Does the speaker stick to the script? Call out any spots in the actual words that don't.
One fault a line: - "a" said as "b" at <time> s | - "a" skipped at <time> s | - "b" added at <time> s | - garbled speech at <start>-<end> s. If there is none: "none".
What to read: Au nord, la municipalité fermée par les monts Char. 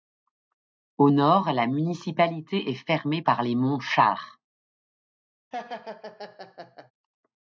- "est" added at 2.7 s